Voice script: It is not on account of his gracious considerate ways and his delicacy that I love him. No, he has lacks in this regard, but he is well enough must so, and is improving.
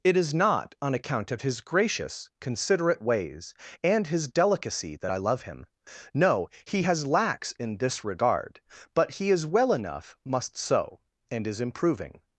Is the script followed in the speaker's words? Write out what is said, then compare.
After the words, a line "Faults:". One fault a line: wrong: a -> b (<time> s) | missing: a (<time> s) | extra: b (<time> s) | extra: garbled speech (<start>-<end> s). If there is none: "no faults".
It is not on account of his gracious considerate ways and his delicacy that I love him. No, he has lacks in this regard, but he is well enough must so, and is improving.
Faults:
no faults